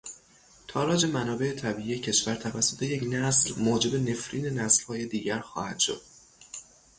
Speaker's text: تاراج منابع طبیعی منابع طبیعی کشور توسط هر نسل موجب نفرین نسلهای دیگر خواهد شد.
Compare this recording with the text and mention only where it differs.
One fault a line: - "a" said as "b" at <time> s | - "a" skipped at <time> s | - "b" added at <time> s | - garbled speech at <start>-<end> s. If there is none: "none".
- "منابع طبیعی" skipped at 2.0 s
- "هر" said as "یک" at 2.8 s